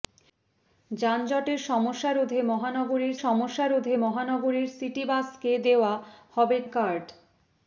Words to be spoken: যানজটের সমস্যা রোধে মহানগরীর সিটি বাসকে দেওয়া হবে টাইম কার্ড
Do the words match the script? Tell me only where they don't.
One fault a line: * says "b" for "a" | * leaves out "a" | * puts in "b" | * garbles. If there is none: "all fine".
* puts in "সমস্যা রোধে মহানগরীর"
* leaves out "টাইম"